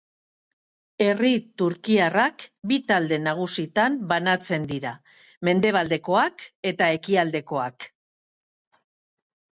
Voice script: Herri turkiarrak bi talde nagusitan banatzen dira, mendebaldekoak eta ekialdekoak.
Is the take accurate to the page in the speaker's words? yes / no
yes